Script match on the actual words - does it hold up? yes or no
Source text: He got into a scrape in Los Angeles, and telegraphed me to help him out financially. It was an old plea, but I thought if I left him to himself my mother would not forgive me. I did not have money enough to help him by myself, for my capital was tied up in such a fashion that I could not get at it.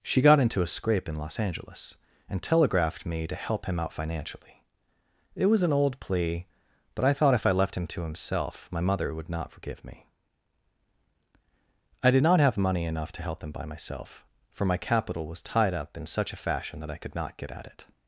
no